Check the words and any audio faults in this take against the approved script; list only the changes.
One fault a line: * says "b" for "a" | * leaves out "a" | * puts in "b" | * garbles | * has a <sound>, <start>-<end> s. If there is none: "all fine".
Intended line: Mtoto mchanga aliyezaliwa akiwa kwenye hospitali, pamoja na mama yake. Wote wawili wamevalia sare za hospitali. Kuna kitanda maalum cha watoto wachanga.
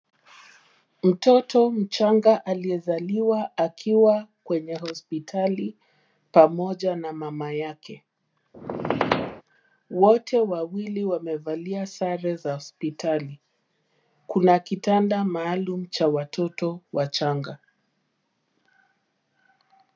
* has a squeak, 8.5-9.4 s